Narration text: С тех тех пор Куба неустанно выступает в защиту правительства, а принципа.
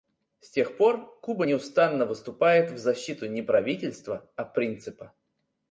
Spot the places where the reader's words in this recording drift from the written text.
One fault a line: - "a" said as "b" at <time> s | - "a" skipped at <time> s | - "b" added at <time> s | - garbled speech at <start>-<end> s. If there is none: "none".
- "тех" skipped at 0.8 s
- "не" added at 3.3 s